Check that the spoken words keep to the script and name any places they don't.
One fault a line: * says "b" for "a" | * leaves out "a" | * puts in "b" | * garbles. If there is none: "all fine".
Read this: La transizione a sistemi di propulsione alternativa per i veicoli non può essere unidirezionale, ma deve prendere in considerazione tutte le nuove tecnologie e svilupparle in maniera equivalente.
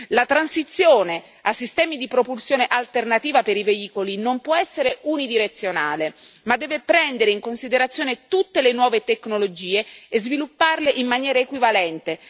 all fine